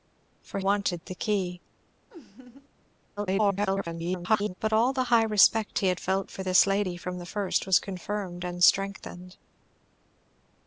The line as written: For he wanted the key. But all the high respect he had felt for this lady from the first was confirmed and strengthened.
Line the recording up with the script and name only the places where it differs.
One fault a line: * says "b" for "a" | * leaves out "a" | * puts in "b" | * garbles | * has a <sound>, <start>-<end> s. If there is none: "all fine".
* leaves out "he"
* has a laugh, 2.1-2.7 s
* garbles